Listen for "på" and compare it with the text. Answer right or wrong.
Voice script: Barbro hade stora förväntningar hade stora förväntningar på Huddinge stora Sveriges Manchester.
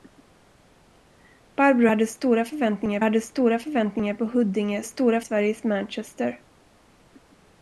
right